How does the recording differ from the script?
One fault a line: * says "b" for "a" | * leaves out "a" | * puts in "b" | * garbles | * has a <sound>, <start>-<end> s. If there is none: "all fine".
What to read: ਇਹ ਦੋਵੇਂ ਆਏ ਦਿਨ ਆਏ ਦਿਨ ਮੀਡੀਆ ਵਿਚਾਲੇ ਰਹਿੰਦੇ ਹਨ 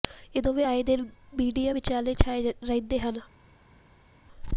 * leaves out "ਆਏ ਦਿਨ"
* puts in "ਛਾਏ"